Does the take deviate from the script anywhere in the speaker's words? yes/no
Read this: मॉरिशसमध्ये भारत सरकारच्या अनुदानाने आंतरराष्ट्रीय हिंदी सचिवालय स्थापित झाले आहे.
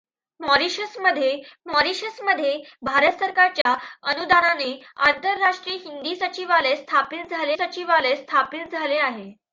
yes